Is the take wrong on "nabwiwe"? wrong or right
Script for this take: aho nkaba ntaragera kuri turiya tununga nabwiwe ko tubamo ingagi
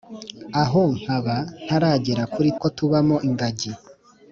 wrong